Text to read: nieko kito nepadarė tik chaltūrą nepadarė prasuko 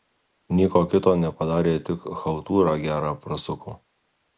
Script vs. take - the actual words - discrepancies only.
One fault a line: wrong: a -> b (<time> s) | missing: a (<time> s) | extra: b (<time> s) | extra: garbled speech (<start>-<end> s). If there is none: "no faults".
wrong: nepadarė -> gerą (2.9 s)